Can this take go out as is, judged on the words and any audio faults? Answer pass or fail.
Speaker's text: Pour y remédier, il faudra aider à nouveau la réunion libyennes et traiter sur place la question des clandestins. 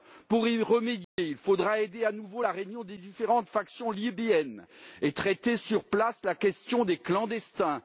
fail